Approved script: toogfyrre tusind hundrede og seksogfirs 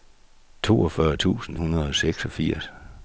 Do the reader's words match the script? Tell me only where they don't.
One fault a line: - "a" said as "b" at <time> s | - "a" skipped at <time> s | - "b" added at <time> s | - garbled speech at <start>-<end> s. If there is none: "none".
none